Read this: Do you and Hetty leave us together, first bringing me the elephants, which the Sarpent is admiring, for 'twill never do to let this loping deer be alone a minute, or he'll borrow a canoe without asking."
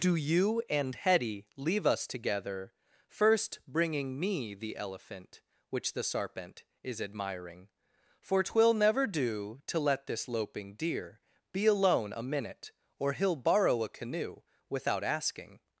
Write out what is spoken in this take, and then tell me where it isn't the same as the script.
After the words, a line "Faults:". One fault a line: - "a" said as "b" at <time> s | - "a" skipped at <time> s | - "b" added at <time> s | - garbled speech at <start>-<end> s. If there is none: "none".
Do you and Hetty leave us together, first bringing me the elephant, which the Sarpent is admiring, for 'twill never do to let this loping deer be alone a minute, or he'll borrow a canoe without asking."
Faults:
- "elephants" said as "elephant" at 4.8 s